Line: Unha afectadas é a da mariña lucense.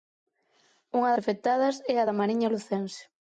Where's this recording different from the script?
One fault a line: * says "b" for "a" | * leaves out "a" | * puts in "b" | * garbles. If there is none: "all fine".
all fine